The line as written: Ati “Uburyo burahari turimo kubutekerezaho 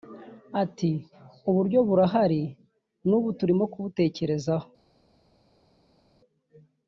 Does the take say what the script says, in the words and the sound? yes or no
no